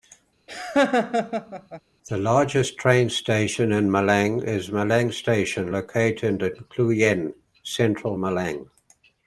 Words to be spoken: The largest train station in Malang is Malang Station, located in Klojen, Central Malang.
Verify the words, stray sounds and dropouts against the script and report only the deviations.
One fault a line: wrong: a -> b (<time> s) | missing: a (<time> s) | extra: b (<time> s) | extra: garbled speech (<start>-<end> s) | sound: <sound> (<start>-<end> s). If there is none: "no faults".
sound: laugh (0.5-1.8 s)